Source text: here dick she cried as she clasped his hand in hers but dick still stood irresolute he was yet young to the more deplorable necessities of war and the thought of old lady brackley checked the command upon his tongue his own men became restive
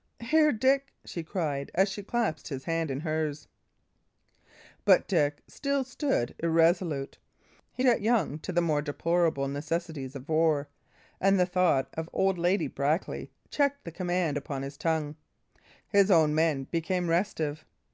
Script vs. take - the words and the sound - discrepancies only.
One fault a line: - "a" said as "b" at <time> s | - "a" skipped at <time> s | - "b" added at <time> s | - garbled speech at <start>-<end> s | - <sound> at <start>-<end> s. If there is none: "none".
- "was" skipped at 7.8 s